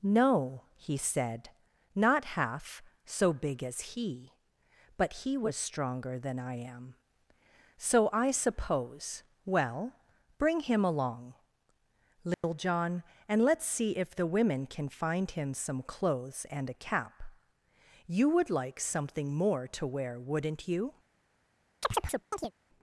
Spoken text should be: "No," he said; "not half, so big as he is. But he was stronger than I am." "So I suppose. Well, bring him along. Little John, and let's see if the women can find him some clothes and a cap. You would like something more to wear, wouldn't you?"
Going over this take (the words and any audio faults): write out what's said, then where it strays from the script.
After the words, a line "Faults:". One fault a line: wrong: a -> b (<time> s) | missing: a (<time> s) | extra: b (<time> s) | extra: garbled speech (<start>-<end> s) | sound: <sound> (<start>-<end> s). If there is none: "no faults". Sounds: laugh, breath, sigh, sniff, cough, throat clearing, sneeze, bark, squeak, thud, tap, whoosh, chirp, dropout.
"No," he said; "not half, so big as he. But he was stronger than I am." "So I suppose. Well, bring him along. Little John, and let's see if the women can find him some clothes and a cap. You would like something more to wear, wouldn't you?"
Faults:
missing: is (4.3 s)
sound: dropout (12.3-12.4 s)
sound: chirp (21.8-22.5 s)